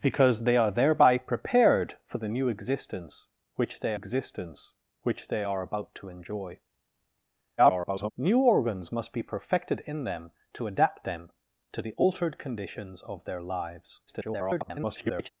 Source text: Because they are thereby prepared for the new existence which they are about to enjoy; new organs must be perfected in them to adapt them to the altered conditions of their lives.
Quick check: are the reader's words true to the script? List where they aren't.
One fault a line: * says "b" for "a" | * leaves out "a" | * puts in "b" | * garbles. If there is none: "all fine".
* puts in "existence which they"
* garbles
* garbles